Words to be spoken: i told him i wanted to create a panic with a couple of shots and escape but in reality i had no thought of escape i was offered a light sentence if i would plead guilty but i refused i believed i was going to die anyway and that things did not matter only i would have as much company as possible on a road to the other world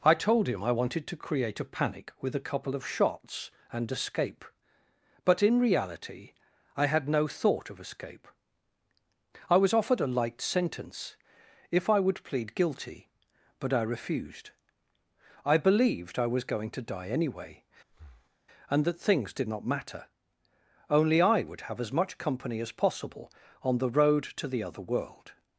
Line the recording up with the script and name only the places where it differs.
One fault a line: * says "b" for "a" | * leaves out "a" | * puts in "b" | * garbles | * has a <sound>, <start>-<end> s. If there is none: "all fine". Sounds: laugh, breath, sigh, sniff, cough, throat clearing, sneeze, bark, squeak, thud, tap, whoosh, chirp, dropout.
* has a breath, 17.9-18.4 s
* says "the" for "a"